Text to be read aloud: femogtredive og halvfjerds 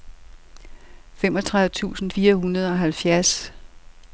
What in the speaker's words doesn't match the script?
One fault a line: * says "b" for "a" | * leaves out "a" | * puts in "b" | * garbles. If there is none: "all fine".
* puts in "tusind fire hundrede"